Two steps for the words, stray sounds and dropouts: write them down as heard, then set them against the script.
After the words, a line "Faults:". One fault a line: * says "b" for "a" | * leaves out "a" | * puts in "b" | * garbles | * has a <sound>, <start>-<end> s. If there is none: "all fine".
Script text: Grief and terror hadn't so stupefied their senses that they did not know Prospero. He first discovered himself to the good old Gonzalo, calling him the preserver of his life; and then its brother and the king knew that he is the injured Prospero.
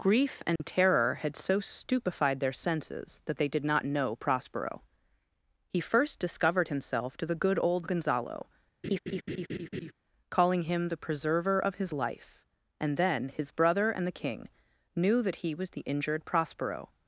Grief and terror had so stupefied their senses that they did not know Prospero. He first discovered himself to the good old Gonzalo, calling him the preserver of his life; and then his brother and the king knew that he was the injured Prospero.
Faults:
* has a dropout, 0.6-0.6 s
* says "had" for "hadn't"
* has a laugh, 8.8-9.9 s
* says "his" for "its"
* says "was" for "is"